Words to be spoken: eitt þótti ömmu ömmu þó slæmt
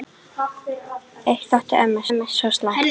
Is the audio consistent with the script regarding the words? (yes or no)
yes